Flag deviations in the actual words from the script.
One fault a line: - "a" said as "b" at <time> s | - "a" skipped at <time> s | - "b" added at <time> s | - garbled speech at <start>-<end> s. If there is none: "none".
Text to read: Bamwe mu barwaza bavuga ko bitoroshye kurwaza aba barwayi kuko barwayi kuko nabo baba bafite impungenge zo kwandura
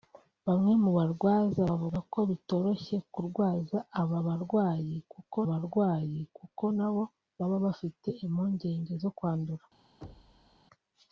none